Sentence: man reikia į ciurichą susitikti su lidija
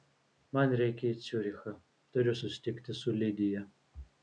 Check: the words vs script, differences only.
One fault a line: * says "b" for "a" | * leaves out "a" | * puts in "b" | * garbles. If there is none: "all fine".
* puts in "turiu"